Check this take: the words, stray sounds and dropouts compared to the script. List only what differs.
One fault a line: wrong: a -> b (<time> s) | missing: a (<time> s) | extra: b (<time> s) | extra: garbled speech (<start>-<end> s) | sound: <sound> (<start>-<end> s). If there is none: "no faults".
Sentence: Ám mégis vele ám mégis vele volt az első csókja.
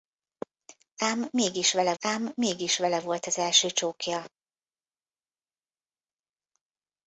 no faults